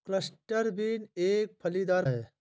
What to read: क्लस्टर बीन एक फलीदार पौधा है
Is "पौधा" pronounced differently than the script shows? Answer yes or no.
yes